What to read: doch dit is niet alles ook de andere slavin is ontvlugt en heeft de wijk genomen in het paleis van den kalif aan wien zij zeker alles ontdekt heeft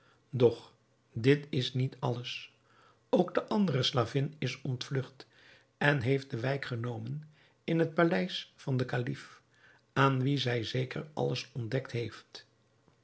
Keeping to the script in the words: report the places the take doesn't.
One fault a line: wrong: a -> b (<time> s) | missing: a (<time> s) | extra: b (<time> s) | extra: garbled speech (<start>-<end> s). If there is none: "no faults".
no faults